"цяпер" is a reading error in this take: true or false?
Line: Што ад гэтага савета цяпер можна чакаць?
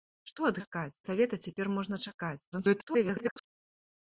false